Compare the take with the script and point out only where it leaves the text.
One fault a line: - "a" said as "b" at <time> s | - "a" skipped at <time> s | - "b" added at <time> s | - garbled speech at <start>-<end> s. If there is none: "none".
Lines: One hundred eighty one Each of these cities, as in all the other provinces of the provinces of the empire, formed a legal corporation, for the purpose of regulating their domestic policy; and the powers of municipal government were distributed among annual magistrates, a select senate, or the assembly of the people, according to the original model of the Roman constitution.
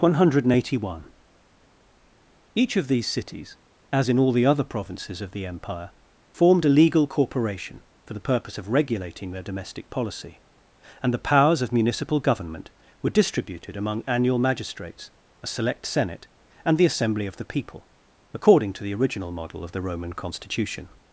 - "provinces of the" skipped at 5.5 s
- "or" said as "and" at 16.6 s